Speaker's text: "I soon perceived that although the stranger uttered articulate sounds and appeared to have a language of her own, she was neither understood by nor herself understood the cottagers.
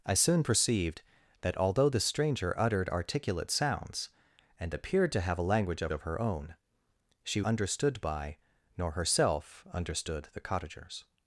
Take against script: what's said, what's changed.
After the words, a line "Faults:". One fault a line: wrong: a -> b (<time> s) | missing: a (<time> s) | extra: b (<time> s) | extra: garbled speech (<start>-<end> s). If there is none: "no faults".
"I soon perceived that although the stranger uttered articulate sounds and appeared to have a language of of her own, she understood by nor herself understood the cottagers.
Faults:
extra: of (5.9 s)
missing: was neither (7.4 s)